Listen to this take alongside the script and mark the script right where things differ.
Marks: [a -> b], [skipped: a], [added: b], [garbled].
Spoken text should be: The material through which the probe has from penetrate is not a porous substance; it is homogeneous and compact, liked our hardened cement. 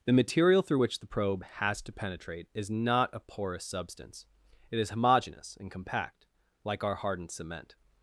The material through which the probe has [from -> to] penetrate is not a porous substance; it is homogeneous and compact, [liked -> like] our hardened cement.